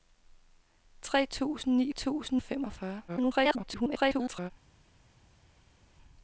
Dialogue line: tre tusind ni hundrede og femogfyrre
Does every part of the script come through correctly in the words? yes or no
no